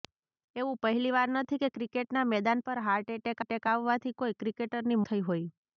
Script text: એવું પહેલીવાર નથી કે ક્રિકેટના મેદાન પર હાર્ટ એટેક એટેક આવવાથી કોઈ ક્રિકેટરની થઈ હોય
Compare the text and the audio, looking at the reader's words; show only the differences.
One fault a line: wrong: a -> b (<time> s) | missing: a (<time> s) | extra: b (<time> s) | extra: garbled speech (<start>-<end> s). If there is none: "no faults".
no faults